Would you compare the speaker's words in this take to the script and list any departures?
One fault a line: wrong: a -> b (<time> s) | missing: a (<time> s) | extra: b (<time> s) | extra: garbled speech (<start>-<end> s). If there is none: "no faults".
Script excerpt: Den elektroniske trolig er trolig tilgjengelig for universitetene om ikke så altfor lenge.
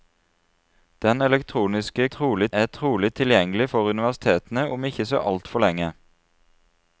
no faults